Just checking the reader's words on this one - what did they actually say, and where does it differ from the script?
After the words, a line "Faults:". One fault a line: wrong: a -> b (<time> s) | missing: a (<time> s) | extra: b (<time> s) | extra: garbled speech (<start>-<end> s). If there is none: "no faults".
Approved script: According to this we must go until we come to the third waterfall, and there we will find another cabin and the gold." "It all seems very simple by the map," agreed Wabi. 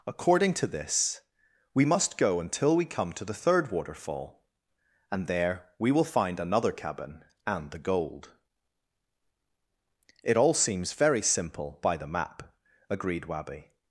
According to this we must go until we come to the third waterfall, and there we will find another cabin and the gold." "It all seems very simple by the map," agreed Wabi.
Faults:
no faults